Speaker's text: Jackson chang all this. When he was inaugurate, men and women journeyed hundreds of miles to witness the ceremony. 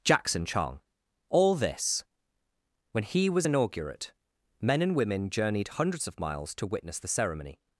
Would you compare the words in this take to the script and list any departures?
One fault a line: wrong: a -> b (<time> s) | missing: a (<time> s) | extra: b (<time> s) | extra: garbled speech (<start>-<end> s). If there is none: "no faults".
no faults